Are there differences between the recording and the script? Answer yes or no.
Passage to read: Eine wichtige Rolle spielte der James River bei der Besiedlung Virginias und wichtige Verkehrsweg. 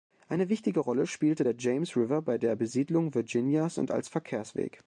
yes